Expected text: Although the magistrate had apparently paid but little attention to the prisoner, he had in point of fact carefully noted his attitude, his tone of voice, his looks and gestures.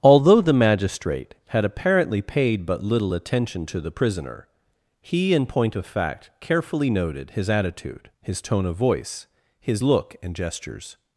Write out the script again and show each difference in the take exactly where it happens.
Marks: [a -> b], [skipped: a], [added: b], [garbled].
Although the magistrate had apparently paid but little attention to the prisoner, he [skipped: had] in point of fact carefully noted his attitude, his tone of voice, his [looks -> look] and gestures.